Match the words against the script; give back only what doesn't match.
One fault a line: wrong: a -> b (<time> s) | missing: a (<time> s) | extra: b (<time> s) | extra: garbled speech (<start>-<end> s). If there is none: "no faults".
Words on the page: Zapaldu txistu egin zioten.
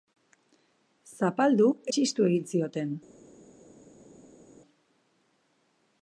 no faults